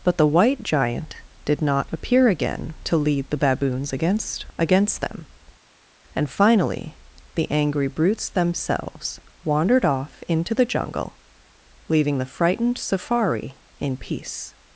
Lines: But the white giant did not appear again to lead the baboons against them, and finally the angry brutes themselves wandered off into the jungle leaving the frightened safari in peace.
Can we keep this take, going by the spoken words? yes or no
no